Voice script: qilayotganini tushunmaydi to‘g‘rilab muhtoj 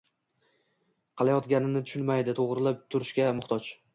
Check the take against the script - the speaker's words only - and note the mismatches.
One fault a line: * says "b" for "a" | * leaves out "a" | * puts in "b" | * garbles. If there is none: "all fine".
* puts in "turishga"